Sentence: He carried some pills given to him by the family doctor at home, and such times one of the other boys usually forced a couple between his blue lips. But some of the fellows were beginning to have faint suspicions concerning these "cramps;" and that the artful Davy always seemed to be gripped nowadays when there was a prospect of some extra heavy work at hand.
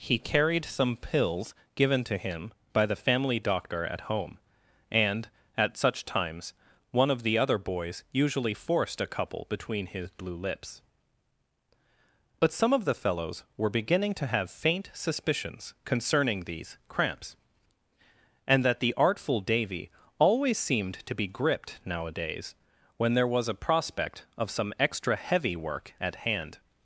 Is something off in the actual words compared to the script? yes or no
yes